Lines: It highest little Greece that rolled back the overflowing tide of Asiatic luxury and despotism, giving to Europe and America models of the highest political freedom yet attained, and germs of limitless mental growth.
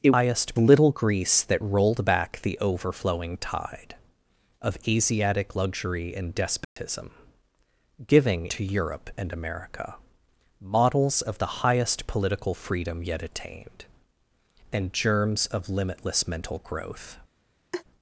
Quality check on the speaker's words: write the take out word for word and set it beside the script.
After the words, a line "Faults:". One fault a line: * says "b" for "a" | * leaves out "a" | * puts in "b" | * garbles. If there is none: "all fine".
It highest little Greece that rolled back the overflowing tide of Asiatic luxury and despotism, giving to Europe and America models of the highest political freedom yet attained, and germs of limitless mental growth.
Faults:
all fine